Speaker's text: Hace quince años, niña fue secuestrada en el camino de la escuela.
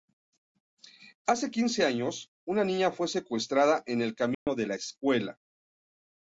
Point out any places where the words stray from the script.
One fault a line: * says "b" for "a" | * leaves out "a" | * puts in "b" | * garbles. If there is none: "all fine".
* puts in "una"